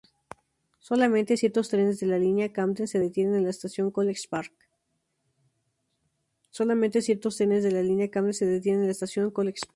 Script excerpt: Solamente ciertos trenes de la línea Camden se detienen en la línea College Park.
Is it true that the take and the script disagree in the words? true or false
true